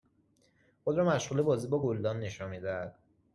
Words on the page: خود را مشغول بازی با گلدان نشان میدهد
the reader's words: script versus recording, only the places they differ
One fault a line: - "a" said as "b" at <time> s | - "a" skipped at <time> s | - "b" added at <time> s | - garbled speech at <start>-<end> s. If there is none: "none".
none